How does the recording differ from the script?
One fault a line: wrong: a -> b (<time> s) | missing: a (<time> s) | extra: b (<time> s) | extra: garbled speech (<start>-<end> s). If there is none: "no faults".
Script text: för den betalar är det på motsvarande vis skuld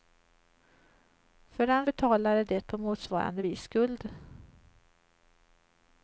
no faults